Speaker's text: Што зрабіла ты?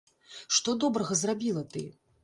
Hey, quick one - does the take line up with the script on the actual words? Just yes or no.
no